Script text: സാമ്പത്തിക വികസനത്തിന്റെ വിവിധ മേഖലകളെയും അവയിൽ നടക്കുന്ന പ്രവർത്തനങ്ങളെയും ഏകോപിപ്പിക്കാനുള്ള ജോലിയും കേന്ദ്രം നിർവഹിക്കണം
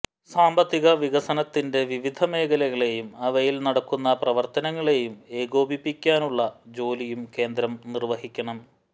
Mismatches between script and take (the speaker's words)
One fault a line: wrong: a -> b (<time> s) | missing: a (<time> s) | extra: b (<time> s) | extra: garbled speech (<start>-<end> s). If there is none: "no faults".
no faults